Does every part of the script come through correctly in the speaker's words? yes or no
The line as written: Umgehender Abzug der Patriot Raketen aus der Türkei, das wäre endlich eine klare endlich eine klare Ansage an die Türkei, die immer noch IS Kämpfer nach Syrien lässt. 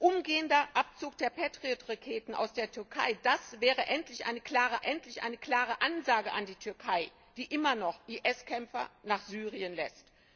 yes